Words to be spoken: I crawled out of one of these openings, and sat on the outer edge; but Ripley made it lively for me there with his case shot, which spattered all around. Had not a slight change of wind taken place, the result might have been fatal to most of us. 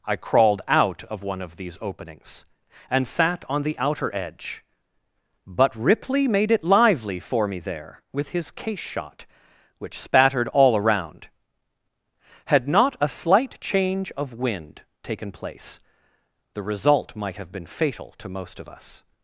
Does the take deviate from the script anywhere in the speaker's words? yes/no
no